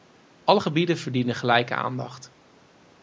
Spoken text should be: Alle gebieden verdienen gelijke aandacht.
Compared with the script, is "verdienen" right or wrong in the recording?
right